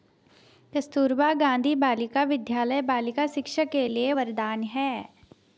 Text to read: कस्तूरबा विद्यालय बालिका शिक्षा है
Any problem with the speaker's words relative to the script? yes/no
yes